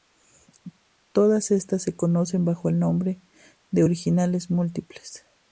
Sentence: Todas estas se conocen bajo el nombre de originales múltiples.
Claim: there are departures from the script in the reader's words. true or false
false